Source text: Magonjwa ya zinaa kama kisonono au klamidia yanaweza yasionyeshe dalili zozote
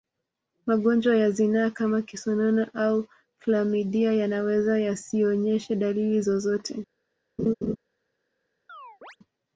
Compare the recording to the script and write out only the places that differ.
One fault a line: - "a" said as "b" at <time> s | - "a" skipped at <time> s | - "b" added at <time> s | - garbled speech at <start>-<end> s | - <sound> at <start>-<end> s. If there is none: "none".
- laugh at 7.4-7.8 s
- chirp at 8.7-9.2 s